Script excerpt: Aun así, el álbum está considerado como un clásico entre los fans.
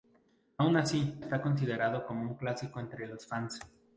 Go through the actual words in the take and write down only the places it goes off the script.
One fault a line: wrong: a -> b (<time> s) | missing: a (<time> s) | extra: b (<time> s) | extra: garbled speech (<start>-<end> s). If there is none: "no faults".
missing: el álbum (1.2 s)